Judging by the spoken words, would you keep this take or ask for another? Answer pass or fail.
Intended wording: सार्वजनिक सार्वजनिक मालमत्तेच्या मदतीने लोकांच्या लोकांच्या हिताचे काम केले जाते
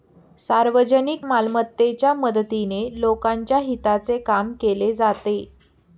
fail